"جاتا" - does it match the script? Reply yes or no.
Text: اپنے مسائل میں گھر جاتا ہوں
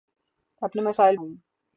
no